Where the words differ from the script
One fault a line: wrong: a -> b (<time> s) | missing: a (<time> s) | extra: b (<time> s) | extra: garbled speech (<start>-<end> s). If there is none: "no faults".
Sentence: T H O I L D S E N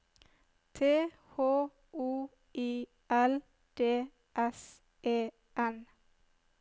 no faults